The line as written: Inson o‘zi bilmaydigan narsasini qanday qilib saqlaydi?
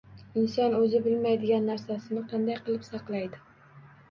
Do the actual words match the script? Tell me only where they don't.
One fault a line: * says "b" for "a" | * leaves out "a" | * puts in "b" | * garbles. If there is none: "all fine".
all fine